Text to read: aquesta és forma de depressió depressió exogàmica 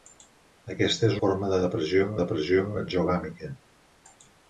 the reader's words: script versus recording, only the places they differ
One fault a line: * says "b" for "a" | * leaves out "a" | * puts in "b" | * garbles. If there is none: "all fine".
all fine